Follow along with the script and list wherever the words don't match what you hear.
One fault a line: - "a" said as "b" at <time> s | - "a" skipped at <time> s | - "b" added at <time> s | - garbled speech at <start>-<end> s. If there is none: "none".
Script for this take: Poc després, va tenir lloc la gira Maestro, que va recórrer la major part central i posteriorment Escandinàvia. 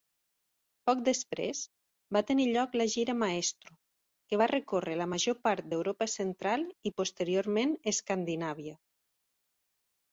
- "d'Europa" added at 5.7 s